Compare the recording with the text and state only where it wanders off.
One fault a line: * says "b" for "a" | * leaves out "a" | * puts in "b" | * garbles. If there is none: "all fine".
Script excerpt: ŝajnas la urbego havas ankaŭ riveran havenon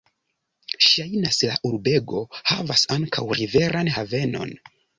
all fine